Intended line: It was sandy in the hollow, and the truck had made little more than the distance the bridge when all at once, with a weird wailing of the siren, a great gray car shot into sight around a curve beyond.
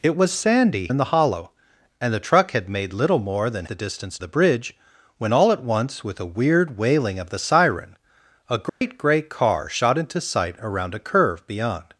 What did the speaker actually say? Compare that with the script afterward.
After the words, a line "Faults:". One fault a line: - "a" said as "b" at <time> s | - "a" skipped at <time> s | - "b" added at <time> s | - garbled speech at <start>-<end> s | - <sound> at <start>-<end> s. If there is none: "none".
It was sandy in the hollow, and the truck had made little more than the distance the bridge when all at once, with a weird wailing of the siren, a great gray car shot into sight around a curve beyond.
Faults:
- dropout at 8.7-8.8 s